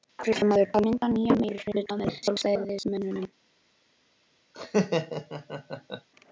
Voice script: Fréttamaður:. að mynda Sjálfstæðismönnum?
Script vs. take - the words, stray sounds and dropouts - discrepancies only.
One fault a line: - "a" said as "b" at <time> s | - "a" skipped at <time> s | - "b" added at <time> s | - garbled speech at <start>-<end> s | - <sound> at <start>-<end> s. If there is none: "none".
- "nýjan meirihluta með" added at 1.1 s
- laugh at 4.5-6.1 s